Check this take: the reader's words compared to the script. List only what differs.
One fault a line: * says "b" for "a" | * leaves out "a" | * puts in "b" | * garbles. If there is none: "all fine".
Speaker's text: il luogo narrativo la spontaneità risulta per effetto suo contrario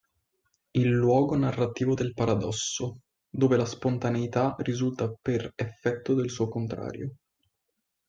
* puts in "del paradosso dove"
* puts in "del"